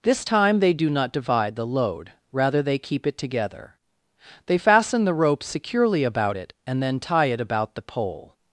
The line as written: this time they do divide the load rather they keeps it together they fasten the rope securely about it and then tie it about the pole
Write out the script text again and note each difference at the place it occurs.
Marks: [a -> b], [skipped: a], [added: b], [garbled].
this time they do [added: not] divide the load rather they [keeps -> keep] it together they fasten the rope securely about it and then tie it about the pole